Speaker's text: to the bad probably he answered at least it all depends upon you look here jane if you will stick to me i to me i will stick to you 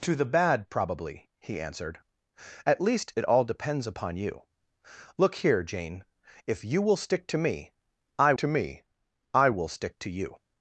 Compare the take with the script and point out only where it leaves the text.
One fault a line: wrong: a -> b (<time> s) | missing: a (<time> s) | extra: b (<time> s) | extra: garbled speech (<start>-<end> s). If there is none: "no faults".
no faults